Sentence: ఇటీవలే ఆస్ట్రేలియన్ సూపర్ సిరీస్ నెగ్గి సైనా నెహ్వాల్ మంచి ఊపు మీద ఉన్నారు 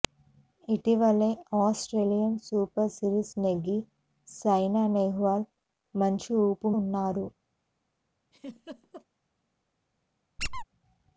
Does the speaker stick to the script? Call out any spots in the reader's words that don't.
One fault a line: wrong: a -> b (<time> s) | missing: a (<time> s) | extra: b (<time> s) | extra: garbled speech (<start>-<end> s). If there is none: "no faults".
missing: మీద (6.7 s)